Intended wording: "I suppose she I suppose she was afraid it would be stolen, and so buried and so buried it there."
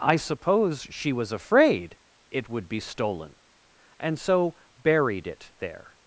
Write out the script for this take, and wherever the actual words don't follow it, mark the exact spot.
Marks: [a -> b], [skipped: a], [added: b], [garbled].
"I suppose she [skipped: I suppose she] was afraid it would be stolen, and so buried [skipped: and so buried] it there."